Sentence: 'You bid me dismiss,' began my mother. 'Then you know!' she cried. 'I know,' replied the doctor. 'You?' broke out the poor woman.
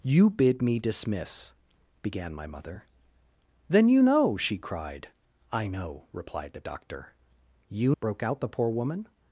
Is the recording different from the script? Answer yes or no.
no